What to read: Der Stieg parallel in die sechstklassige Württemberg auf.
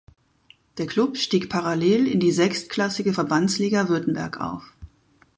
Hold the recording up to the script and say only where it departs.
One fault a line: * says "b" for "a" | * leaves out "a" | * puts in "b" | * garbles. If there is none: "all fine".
* puts in "Klub"
* puts in "Verbandsliga"